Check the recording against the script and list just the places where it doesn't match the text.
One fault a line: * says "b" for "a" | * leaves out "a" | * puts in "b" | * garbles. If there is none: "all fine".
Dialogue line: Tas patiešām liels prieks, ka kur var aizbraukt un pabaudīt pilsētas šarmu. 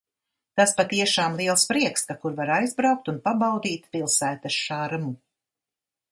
all fine